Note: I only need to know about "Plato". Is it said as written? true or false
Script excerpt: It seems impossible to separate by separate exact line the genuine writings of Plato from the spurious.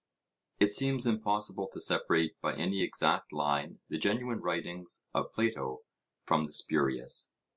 true